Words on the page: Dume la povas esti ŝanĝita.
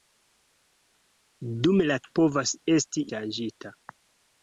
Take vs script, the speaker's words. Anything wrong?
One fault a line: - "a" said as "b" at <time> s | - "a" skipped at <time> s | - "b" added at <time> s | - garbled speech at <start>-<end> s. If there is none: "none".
none